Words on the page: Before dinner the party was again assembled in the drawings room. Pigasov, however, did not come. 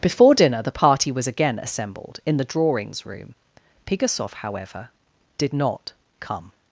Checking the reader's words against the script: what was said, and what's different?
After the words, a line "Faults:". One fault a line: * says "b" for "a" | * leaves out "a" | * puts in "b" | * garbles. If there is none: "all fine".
Before dinner the party was again assembled in the drawings room. Pigasov, however, did not come.
Faults:
all fine